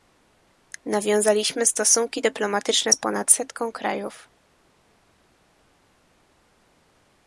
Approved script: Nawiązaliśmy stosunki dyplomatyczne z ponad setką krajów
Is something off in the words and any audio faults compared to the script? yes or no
no